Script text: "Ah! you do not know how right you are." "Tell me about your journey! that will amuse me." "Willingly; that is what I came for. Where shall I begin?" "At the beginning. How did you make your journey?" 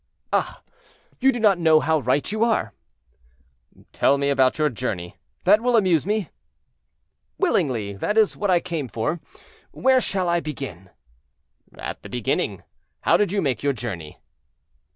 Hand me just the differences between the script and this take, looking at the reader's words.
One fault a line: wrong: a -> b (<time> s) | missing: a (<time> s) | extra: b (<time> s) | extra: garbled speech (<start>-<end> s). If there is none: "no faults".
no faults